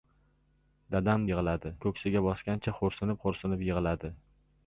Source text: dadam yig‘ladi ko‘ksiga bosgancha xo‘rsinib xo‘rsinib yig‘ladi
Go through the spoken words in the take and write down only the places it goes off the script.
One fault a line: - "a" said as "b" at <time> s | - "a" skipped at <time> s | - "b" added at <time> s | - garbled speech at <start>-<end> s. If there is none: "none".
none